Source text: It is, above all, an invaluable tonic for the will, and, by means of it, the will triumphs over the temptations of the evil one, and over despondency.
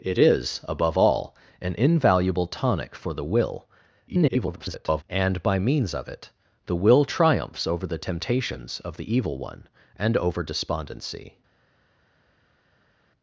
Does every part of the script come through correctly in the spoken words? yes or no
no